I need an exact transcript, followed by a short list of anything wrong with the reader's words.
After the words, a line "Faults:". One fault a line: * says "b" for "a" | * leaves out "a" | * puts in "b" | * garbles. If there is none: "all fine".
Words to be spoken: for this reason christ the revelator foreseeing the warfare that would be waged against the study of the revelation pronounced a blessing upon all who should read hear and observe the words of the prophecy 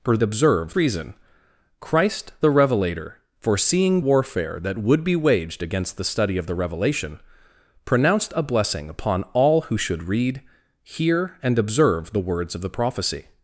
for observe reason christ the revelator foreseeing warfare that would be waged against the study of the revelation pronounced a blessing upon all who should read hear and observe the words of the prophecy
Faults:
* says "observe" for "this"
* leaves out "the"